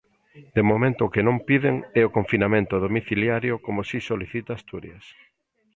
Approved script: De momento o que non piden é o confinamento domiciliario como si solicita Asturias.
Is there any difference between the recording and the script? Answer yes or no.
no